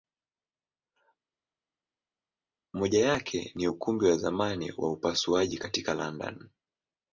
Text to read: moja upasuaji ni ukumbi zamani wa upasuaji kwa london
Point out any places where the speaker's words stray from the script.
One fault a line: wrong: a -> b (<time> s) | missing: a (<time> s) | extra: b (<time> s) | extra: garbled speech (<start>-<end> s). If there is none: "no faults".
wrong: upasuaji -> yake (3.1 s)
extra: wa (4.1 s)
wrong: kwa -> katika (5.6 s)